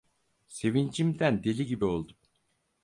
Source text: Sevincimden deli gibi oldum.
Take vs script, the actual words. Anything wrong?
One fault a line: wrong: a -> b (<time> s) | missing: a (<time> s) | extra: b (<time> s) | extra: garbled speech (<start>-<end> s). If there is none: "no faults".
no faults